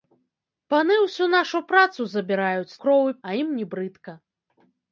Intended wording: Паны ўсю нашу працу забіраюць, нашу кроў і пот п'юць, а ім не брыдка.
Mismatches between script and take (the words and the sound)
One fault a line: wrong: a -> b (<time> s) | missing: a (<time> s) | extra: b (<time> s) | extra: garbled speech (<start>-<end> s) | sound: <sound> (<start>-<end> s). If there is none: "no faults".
missing: нашу (2.8 s)
missing: пот п'юць (3.2 s)